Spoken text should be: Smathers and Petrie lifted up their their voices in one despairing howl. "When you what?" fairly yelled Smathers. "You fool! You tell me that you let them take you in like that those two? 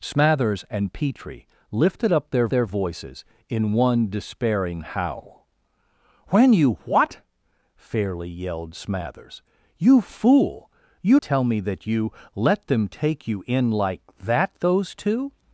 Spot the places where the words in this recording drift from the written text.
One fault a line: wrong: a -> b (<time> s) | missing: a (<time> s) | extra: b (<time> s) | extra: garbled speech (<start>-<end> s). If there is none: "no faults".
no faults